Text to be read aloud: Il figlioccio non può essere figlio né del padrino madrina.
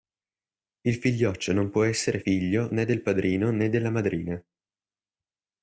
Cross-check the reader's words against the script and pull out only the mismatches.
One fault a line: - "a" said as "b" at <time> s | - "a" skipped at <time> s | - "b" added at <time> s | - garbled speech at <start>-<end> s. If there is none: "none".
- "né della" added at 3.5 s